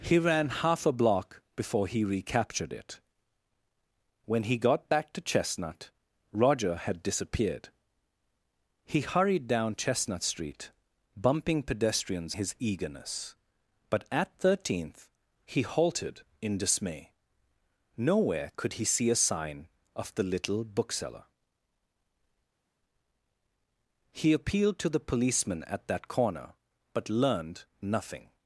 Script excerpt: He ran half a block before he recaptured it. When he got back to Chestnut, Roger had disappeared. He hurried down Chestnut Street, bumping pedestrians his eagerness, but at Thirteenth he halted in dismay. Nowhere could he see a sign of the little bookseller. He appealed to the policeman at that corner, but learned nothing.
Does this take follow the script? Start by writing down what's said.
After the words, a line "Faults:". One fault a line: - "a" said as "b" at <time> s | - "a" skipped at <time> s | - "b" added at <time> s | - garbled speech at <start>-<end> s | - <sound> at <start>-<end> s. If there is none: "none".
He ran half a block before he recaptured it. When he got back to Chestnut, Roger had disappeared. He hurried down Chestnut Street, bumping pedestrians his eagerness, but at Thirteenth he halted in dismay. Nowhere could he see a sign of the little bookseller. He appealed to the policeman at that corner, but learned nothing.
Faults:
none